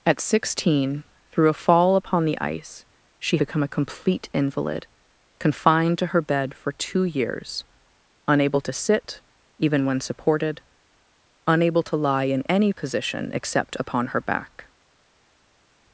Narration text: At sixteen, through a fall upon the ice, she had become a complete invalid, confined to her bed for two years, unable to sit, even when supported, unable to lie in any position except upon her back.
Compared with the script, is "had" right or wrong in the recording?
wrong